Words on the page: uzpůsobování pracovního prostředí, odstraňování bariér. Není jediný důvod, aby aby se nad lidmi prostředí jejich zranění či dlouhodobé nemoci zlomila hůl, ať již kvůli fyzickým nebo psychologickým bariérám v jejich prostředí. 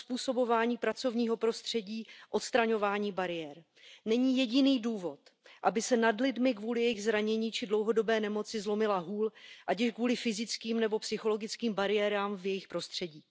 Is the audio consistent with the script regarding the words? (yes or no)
no